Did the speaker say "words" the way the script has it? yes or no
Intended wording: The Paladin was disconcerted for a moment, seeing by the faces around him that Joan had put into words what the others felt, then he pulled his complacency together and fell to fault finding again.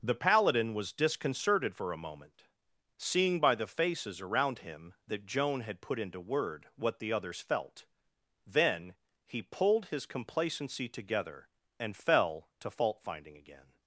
no